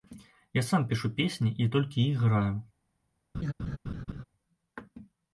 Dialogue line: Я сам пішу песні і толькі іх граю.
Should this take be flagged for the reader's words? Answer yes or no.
no